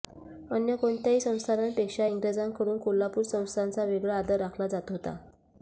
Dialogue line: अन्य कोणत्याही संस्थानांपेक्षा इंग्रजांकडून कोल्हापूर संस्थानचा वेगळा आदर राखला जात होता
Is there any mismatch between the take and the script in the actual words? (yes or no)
no